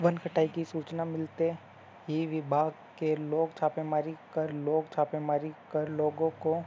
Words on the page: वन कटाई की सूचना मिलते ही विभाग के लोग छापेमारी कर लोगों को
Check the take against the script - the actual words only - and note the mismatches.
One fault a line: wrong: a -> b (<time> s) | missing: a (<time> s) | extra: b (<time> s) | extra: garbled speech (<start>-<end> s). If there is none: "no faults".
extra: लोग छापेमारी कर (4.5 s)